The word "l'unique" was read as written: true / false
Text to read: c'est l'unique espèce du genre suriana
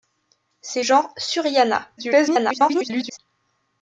false